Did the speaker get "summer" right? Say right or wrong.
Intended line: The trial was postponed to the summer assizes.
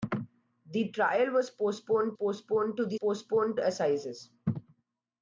wrong